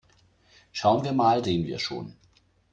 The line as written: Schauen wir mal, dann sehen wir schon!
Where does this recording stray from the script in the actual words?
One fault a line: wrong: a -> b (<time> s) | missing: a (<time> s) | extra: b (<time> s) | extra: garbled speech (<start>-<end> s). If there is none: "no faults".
missing: dann (1.4 s)